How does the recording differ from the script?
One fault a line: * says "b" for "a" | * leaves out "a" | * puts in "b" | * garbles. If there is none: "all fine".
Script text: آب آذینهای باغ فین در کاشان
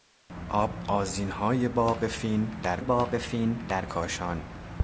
* puts in "باغ فین در"